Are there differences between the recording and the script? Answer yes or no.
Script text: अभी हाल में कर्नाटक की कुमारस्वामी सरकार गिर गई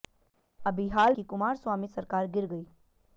yes